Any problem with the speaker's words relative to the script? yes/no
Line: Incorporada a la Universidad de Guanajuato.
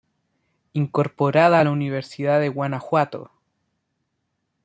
no